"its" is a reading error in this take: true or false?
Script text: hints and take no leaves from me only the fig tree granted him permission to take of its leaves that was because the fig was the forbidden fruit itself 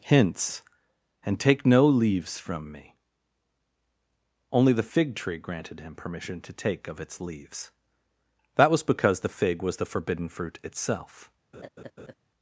false